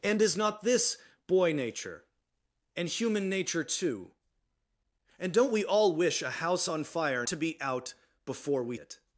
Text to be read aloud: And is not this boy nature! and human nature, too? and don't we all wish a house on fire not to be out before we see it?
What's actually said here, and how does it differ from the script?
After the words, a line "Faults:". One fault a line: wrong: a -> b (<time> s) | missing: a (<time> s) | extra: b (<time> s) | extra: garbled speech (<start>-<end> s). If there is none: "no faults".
And is not this boy nature! and human nature, too? and don't we all wish a house on fire to be out before we it?
Faults:
missing: not (7.3 s)
missing: see (8.8 s)